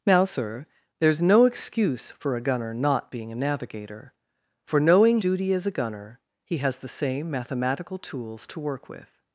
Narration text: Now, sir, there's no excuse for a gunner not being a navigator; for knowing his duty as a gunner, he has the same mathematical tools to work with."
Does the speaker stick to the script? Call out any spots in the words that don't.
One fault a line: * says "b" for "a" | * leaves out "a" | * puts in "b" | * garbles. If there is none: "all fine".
* leaves out "his"